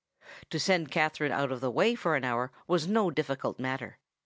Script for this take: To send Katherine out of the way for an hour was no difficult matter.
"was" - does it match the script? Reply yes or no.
yes